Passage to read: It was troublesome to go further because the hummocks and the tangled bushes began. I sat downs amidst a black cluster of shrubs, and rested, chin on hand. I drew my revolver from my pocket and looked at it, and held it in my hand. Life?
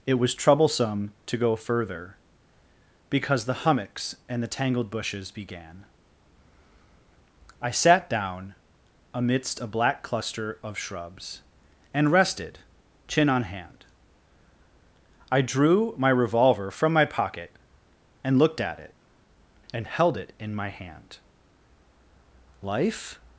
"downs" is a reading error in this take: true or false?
true